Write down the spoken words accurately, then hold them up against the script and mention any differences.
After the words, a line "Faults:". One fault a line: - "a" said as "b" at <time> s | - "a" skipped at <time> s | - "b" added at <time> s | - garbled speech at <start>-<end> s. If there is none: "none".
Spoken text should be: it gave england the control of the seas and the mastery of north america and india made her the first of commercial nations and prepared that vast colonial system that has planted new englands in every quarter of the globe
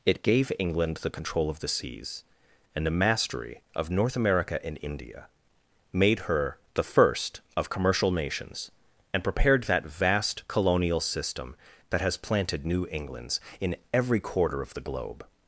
it gave england the control of the seas and the mastery of north america and india made her the first of commercial nations and prepared that vast colonial system that has planted new englands in every quarter of the globe
Faults:
none